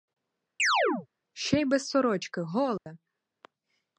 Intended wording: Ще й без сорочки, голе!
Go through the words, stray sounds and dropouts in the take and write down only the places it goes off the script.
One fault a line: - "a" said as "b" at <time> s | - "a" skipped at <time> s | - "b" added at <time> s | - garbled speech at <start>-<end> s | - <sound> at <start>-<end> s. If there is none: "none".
- chirp at 0.6-1.1 s
- dropout at 2.8-2.9 s